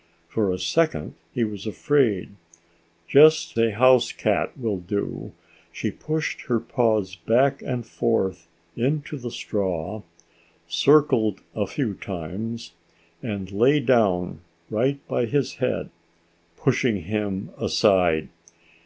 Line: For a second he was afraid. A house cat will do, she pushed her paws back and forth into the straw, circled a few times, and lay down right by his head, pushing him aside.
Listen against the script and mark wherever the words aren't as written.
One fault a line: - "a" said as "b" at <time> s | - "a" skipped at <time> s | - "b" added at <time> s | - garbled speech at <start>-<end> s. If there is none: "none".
none